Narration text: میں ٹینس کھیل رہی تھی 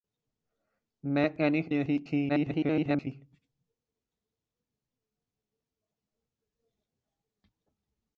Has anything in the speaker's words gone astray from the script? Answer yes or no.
yes